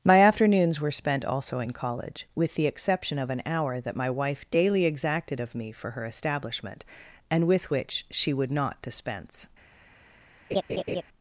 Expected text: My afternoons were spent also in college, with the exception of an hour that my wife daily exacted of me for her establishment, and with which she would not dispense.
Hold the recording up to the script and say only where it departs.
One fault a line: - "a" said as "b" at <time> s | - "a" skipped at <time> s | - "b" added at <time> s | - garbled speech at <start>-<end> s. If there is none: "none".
none